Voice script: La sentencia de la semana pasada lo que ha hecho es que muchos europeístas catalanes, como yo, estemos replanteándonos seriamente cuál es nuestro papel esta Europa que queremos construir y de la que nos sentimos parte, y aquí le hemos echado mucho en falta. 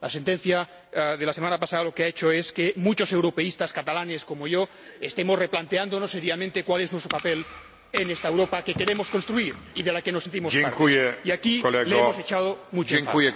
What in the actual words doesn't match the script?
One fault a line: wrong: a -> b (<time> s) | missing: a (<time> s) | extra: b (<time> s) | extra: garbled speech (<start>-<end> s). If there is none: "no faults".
extra: en (7.9 s)